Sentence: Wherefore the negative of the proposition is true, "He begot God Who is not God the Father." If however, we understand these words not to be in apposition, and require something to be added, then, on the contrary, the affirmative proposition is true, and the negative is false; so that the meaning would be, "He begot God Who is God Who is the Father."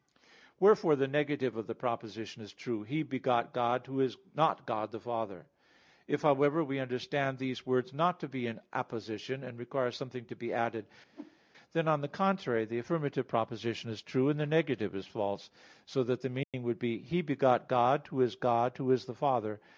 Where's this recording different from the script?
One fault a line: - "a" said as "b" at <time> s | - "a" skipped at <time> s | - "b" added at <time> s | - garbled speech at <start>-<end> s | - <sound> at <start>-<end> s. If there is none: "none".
- whoosh at 11.1-11.4 s
- dropout at 16.4-16.5 s